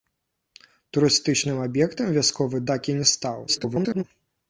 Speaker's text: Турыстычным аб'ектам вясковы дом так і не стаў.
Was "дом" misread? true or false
true